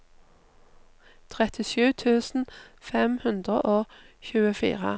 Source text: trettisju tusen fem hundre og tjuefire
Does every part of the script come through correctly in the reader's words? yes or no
yes